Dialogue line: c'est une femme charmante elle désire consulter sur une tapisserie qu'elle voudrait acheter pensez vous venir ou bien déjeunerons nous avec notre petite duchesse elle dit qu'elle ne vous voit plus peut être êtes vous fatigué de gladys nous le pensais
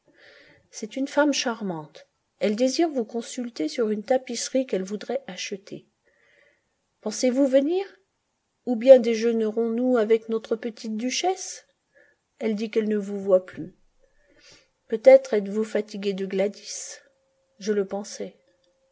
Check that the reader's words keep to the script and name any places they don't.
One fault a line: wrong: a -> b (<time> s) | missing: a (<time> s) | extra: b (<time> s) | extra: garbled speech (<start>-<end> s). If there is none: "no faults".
extra: vous (2.9 s)
wrong: nous -> je (17.6 s)